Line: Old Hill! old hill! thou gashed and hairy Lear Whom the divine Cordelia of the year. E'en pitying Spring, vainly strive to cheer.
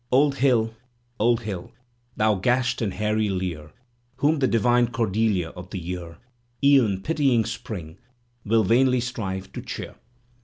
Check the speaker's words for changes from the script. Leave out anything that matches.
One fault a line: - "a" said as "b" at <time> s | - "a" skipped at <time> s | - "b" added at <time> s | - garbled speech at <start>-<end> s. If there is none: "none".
- "will" added at 8.4 s